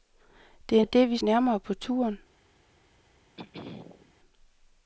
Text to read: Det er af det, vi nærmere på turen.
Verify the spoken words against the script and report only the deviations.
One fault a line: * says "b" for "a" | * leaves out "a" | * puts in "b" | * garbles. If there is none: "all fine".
all fine